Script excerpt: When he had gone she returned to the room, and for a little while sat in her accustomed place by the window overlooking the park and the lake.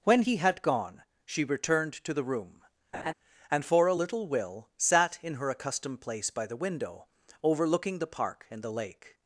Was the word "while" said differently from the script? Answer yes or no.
yes